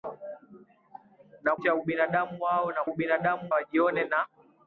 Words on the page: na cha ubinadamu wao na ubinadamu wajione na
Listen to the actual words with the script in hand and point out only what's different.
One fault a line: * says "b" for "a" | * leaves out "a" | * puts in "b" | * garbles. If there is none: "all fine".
all fine